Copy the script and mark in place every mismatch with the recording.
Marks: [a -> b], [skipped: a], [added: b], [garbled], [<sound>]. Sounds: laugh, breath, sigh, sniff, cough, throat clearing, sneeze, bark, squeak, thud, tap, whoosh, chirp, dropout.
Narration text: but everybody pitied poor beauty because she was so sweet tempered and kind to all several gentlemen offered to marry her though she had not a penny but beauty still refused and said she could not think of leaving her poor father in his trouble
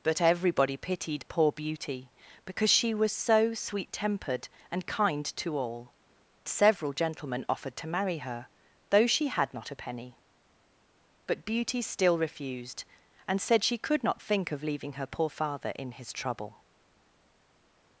but everybody pitied poor beauty because she was so sweet tempered and kind to all several gentlemen offered to marry her though she had not a penny but beauty still refused and said she could not think of leaving her poor father in his trouble